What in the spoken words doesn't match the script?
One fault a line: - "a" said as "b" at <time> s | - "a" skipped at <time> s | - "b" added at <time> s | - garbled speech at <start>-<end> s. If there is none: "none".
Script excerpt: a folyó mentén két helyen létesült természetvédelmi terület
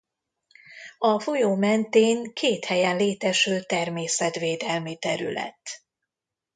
none